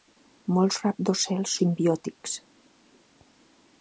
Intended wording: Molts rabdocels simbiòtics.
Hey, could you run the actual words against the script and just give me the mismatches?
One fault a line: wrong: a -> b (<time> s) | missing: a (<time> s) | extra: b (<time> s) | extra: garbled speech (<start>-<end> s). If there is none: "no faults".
no faults